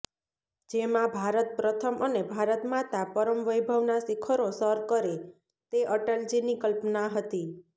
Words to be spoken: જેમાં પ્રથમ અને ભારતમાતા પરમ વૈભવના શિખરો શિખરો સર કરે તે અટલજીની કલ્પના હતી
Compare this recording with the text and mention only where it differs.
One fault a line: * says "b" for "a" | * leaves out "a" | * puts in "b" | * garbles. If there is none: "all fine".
* puts in "ભારત"
* leaves out "શિખરો"